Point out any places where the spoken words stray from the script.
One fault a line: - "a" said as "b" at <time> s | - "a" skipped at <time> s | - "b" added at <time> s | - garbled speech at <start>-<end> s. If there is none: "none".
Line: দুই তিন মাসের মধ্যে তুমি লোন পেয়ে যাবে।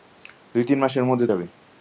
- "তুমি লোন পেয়ে" skipped at 1.3 s